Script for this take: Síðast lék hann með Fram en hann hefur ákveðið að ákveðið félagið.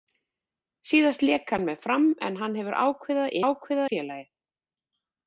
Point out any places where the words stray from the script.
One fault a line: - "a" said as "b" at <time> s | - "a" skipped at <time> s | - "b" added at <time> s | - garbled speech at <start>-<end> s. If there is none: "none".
none